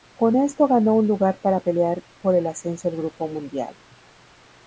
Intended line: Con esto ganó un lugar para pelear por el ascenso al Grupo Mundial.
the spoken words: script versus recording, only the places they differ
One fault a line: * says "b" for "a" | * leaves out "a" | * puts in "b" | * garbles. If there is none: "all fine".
all fine